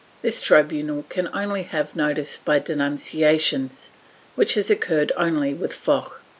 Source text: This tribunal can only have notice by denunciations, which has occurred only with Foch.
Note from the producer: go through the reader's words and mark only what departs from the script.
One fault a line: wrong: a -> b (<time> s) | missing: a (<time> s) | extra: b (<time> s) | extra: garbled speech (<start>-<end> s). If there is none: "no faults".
no faults